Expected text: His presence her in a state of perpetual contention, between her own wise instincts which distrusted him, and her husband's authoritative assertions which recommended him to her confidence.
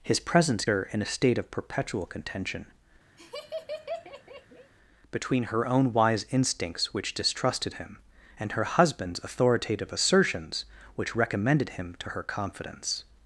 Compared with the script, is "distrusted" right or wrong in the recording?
right